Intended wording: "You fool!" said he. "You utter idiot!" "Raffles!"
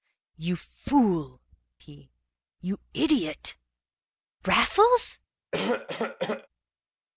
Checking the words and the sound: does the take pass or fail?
fail